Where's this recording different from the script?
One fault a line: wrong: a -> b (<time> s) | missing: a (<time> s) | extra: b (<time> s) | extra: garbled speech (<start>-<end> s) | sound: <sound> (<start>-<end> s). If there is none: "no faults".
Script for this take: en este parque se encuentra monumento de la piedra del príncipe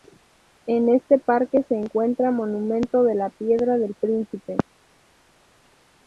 no faults